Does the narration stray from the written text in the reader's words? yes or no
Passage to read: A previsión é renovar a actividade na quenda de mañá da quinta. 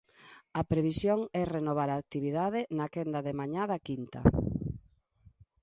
no